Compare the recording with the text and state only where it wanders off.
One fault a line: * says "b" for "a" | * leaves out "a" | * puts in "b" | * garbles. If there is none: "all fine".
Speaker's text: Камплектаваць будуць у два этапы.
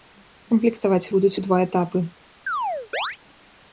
all fine